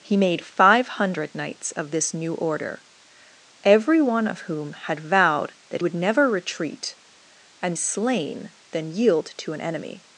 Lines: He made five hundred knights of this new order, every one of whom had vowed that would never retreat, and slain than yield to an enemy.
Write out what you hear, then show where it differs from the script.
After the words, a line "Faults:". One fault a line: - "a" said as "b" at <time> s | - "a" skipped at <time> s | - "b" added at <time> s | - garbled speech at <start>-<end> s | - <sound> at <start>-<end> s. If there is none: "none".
He made five hundred knights of this new order, every one of whom had vowed that would never retreat, and slain than yield to an enemy.
Faults:
none